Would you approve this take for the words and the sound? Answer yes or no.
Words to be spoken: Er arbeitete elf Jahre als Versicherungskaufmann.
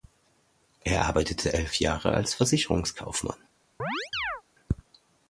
no